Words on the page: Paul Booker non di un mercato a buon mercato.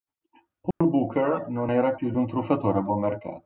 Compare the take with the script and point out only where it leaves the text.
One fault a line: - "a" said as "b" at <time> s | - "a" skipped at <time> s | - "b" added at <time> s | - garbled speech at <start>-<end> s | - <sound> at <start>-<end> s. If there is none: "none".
- dropout at 0.7-0.8 s
- "era più" added at 1.7 s
- "mercato" said as "truffatore" at 2.3 s